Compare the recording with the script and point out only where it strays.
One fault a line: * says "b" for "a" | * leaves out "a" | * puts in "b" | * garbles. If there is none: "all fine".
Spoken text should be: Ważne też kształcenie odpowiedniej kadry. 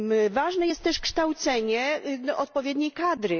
* puts in "jest"